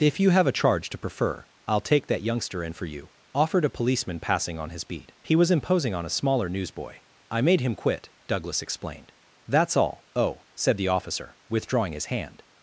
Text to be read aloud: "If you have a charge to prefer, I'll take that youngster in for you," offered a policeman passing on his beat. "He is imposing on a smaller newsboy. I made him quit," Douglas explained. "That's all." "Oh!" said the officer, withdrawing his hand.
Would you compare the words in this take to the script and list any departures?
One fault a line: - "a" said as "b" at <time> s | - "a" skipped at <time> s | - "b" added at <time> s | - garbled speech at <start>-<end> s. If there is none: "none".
- "is" said as "was" at 5.3 s